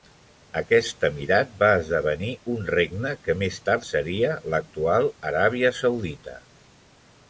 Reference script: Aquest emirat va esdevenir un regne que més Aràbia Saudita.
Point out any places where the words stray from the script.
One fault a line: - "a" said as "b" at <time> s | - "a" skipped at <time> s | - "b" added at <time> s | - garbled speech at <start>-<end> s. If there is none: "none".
- "tard seria l'actual" added at 3.7 s